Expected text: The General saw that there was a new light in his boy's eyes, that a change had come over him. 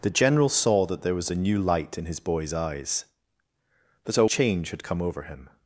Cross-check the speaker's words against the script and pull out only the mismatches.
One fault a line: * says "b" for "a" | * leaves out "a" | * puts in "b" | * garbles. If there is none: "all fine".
all fine